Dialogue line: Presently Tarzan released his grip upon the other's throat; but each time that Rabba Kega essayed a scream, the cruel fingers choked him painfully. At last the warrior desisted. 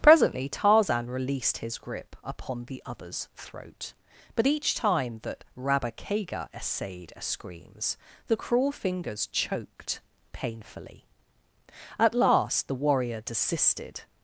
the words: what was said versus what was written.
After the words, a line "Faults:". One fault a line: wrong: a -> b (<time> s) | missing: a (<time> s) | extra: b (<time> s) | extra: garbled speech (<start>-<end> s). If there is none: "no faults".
Presently Tarzan released his grip upon the other's throat; but each time that Rabba Kega essayed a screams, the cruel fingers choked painfully. At last the warrior desisted.
Faults:
wrong: scream -> screams (7.2 s)
missing: him (10.0 s)